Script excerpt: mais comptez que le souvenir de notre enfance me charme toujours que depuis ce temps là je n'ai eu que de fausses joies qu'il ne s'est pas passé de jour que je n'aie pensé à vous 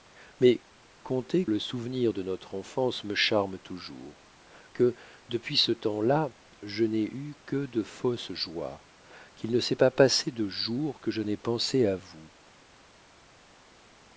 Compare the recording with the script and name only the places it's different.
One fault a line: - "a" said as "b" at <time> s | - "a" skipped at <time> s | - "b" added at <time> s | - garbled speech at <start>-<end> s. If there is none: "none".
- "que" skipped at 1.4 s